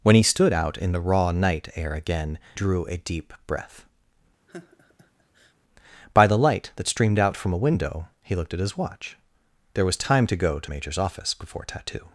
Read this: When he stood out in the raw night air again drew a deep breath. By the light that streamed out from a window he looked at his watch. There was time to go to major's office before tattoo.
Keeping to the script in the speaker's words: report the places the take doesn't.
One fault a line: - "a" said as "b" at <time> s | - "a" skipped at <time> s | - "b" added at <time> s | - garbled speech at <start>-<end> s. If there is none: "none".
none